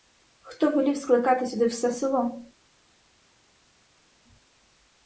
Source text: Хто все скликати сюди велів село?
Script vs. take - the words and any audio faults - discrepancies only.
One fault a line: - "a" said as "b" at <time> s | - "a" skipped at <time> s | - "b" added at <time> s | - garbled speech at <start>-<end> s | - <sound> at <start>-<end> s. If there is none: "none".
- "все" said as "велів" at 0.7 s
- "велів" said as "все" at 1.6 s